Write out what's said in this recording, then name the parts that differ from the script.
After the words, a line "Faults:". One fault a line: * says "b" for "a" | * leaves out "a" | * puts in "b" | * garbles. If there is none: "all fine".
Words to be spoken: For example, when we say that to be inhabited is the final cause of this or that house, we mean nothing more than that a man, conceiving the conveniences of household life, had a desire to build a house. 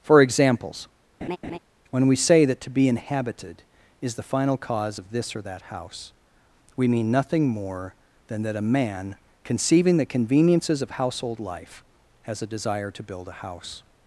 For examples, when we say that to be inhabited is the final cause of this or that house, we mean nothing more than that a man, conceiving the conveniences of household life, has a desire to build a house.
Faults:
* says "examples" for "example"
* says "has" for "had"